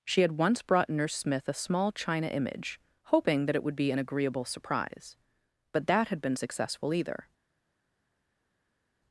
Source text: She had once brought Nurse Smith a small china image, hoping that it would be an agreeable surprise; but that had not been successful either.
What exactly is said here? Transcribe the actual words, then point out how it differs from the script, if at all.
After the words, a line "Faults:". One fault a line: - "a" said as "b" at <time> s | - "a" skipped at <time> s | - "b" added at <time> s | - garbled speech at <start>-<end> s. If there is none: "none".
She had once brought Nurse Smith a small china image, hoping that it would be an agreeable surprise; but that had been successful either.
Faults:
- "not" skipped at 6.2 s